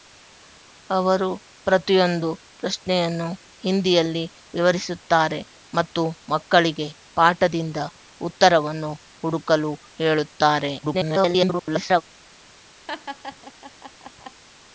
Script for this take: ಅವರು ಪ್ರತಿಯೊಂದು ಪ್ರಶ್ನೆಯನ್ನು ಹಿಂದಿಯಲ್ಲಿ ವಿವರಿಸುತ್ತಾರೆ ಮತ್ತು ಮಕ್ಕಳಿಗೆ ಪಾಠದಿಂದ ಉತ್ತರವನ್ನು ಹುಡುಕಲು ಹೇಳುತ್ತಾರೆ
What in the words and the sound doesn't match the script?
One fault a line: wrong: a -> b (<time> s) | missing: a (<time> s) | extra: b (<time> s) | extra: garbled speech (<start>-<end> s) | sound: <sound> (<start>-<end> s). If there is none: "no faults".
extra: garbled speech (10.8-12.0 s)
sound: laugh (12.9-14.4 s)